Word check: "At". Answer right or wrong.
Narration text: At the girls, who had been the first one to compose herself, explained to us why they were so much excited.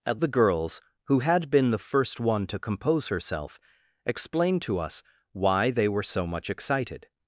right